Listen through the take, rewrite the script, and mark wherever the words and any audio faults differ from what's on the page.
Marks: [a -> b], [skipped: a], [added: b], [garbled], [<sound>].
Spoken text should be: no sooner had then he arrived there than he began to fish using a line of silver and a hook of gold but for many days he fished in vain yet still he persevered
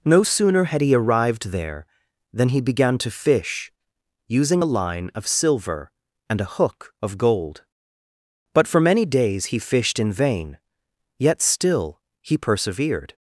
no sooner had [skipped: then] he arrived there than he began to fish using a line of silver and a hook of gold but for many days he fished in vain yet still he persevered